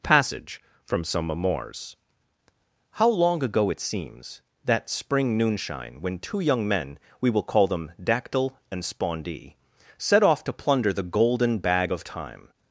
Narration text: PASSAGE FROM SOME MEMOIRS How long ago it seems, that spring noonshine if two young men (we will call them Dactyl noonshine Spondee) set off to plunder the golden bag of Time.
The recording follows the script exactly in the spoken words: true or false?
false